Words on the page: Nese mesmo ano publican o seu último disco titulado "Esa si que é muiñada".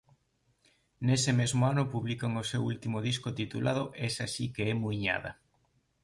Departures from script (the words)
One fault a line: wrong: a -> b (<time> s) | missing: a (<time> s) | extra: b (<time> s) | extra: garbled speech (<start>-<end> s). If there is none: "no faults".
no faults